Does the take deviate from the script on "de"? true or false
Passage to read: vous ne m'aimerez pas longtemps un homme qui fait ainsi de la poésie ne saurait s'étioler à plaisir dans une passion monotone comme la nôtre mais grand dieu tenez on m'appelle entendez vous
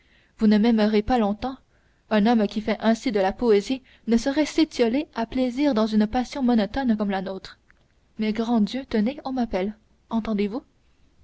false